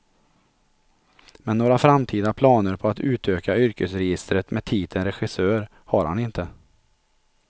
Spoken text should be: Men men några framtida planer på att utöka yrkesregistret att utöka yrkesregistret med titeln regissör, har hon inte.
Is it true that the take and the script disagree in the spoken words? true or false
true